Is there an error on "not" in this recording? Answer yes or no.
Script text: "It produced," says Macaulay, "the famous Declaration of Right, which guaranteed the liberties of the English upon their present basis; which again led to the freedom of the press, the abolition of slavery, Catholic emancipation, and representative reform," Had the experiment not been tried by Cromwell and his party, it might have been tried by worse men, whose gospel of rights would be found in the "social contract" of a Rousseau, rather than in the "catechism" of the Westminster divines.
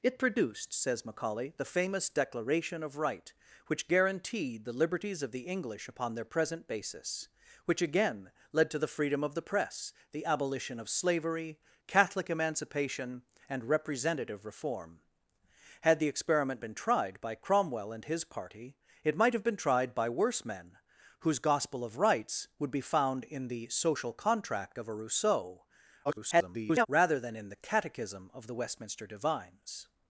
yes